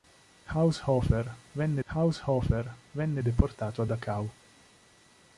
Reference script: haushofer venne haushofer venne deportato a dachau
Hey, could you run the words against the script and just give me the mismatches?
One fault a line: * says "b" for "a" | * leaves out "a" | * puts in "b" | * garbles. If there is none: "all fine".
all fine